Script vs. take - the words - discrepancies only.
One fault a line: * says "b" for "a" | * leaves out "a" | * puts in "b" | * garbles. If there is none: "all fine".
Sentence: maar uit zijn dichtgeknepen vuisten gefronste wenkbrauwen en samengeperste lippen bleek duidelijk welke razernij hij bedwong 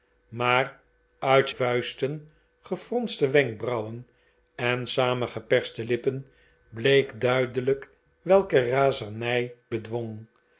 * leaves out "zijn dichtgeknepen"
* leaves out "hij"